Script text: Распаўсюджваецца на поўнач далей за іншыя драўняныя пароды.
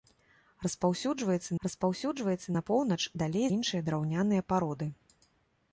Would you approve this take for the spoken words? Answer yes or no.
no